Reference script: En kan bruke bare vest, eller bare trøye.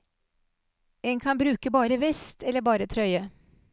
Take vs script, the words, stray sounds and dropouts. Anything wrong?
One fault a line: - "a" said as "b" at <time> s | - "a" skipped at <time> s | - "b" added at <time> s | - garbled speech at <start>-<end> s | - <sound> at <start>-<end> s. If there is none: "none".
none